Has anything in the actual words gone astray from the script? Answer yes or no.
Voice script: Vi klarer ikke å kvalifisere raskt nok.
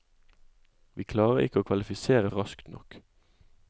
no